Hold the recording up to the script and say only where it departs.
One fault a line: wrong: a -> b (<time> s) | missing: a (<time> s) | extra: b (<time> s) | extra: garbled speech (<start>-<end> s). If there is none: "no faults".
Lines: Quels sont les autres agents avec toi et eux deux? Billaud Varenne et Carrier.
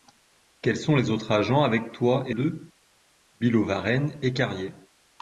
missing: eux (2.4 s)